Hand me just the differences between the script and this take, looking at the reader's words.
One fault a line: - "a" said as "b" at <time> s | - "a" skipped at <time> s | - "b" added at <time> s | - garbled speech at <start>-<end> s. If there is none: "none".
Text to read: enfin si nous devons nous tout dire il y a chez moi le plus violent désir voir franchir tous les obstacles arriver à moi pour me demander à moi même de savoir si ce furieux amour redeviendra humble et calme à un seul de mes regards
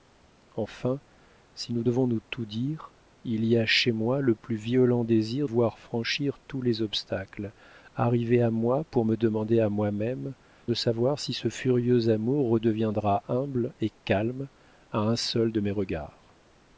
none